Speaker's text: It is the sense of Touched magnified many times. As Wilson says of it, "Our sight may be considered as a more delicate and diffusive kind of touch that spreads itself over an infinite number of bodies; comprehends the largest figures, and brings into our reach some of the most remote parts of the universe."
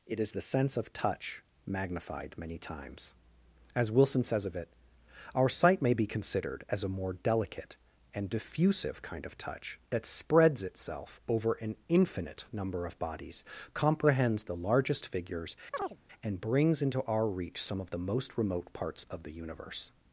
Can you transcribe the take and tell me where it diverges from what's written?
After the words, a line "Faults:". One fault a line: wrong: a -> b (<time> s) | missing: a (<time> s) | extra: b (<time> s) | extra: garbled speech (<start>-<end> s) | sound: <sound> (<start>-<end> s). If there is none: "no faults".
It is the sense of Touch magnified many times. As Wilson says of it, "Our sight may be considered as a more delicate and diffusive kind of touch that spreads itself over an infinite number of bodies; comprehends the largest figures, and brings into our reach some of the most remote parts of the universe."
Faults:
wrong: Touched -> Touch (0.9 s)
sound: chirp (15.7-16.0 s)